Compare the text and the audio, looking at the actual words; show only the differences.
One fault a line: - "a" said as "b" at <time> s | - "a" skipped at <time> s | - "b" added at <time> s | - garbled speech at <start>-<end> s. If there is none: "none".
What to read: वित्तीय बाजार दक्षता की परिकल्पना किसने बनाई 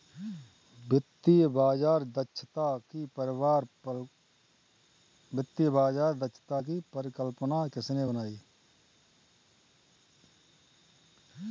none